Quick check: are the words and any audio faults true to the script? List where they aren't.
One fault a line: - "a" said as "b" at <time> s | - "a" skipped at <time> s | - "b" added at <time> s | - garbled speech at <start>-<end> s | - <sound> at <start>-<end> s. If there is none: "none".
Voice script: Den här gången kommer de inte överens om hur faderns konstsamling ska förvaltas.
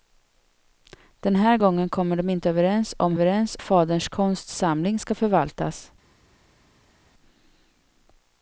- "hur" said as "överens" at 3.1 s